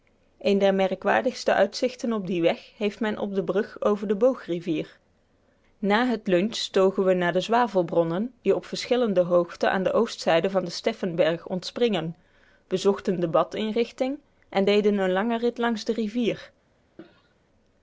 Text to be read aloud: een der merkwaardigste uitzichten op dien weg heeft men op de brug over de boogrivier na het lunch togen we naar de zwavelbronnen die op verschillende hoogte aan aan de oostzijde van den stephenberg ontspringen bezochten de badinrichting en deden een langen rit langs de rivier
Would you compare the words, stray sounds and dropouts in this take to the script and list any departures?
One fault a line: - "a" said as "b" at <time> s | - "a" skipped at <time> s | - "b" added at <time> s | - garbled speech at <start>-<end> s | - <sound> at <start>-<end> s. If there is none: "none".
- "aan" skipped at 9.8 s
- cough at 17.0-17.3 s